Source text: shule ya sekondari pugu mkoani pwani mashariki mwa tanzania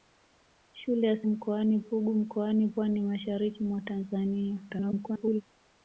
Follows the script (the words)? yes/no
no